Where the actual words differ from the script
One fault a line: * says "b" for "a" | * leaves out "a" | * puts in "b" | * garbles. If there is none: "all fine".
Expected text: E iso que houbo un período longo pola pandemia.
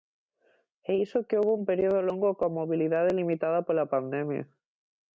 * puts in "coa mobilidade limitada"